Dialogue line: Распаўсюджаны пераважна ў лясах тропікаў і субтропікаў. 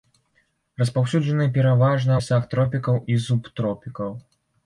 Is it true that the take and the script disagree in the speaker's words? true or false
true